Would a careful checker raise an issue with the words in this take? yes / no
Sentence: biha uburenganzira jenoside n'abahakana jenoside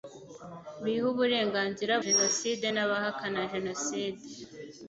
no